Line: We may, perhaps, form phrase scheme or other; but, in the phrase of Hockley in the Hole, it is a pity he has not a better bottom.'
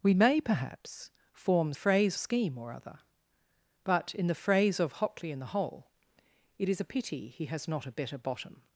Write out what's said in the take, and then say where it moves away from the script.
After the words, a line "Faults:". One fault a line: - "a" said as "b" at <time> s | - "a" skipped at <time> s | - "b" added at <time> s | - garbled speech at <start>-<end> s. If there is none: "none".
We may, perhaps, form phrase scheme or other; but, in the phrase of Hockley in the Hole, it is a pity he has not a better bottom.'
Faults:
none